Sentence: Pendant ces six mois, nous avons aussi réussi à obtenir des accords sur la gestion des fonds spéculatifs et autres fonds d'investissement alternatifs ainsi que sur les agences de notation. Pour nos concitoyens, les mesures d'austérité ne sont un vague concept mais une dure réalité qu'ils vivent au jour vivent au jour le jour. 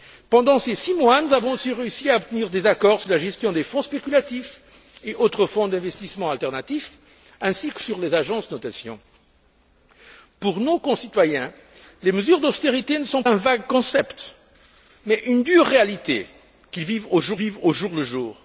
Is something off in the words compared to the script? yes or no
no